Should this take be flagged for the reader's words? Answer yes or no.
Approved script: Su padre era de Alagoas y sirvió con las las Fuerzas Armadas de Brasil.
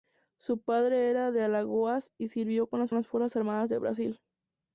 no